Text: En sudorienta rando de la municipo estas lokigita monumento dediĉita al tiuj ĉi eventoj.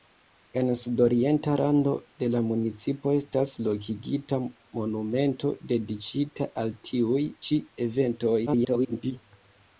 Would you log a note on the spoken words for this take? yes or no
yes